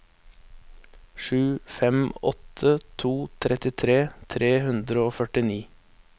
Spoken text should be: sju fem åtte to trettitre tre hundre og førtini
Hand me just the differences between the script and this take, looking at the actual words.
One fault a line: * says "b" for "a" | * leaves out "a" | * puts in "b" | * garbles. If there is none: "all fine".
all fine